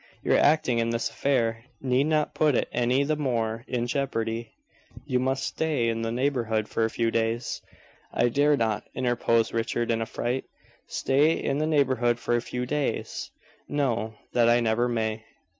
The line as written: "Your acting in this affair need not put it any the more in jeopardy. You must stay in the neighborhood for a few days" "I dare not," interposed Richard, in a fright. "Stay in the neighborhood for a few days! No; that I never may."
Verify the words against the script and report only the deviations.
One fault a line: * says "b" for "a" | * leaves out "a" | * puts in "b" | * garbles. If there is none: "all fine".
all fine